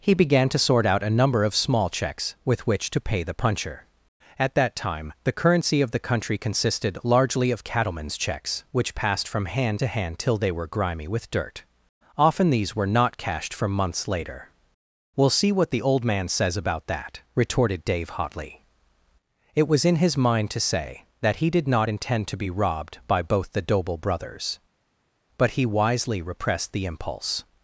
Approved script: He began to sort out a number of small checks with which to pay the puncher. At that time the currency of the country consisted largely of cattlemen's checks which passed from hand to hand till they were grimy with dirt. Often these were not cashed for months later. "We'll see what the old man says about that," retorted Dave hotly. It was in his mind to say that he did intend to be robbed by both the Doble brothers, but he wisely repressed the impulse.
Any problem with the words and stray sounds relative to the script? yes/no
yes